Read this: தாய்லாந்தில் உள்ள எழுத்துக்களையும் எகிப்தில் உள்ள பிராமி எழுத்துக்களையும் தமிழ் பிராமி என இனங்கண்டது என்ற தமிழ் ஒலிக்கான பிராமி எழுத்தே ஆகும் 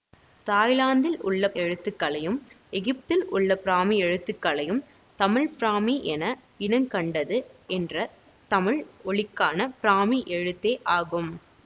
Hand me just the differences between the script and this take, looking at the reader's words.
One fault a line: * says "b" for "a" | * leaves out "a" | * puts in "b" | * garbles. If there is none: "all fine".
all fine